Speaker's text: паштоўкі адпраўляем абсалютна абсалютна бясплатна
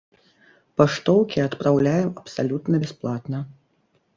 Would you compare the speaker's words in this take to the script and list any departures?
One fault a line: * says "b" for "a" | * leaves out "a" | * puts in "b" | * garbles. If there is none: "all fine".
* leaves out "абсалютна"